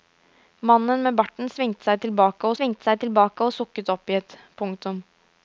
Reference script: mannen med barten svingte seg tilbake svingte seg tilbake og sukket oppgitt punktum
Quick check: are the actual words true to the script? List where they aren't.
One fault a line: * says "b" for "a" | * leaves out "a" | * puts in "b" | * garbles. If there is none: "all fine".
all fine